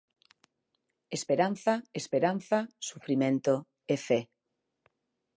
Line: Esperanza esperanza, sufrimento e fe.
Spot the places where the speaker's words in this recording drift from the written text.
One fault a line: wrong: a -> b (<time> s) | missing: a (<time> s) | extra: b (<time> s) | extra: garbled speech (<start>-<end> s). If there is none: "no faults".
no faults